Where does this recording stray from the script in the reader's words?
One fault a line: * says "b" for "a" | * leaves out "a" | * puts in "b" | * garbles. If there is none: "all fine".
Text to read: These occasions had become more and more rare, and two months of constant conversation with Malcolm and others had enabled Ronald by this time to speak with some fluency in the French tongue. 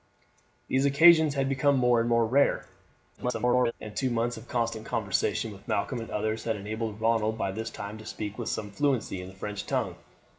* garbles